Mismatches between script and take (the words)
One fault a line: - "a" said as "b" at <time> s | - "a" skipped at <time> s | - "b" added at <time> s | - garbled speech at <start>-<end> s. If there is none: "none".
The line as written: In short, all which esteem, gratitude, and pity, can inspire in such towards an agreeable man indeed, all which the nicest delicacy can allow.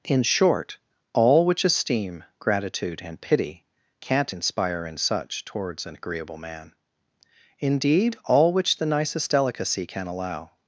- "can" said as "can't" at 4.0 s